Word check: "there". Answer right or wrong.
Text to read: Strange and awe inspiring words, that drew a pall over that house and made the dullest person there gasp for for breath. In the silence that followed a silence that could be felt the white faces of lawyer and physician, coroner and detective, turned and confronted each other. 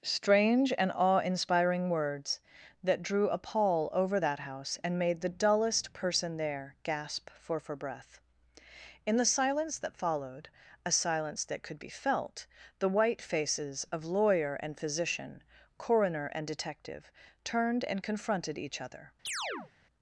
right